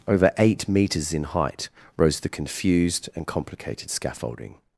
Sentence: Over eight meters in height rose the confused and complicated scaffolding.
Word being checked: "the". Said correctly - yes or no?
yes